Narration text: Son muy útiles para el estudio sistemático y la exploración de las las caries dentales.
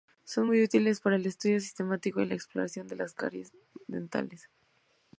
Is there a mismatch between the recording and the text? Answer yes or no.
yes